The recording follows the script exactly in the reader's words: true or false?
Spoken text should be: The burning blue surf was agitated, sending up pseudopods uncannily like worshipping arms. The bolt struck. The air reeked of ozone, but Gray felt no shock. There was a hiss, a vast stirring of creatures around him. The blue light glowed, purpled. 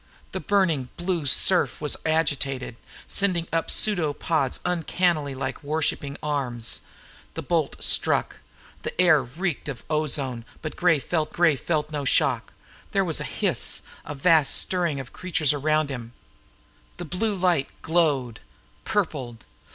false